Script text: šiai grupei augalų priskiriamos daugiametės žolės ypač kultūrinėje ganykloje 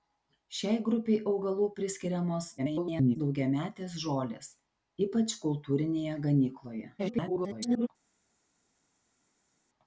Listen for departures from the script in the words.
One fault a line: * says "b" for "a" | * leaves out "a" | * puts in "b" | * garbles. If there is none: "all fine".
* garbles
* garbles